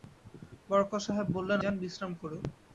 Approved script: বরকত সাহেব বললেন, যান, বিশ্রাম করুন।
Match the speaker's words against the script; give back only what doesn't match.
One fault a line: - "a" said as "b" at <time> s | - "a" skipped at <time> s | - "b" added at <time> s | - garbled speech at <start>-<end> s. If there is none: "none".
none